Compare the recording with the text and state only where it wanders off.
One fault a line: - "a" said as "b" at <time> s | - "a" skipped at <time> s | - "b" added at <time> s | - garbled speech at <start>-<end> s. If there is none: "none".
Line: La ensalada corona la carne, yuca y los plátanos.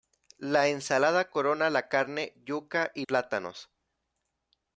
- "los" skipped at 3.0 s